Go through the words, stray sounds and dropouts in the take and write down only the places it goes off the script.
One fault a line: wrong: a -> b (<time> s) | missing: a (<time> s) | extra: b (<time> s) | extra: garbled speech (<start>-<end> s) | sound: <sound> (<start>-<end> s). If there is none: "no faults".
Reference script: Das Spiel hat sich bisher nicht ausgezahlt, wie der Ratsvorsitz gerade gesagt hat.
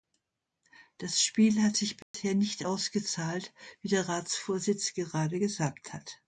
sound: dropout (2.0-2.1 s)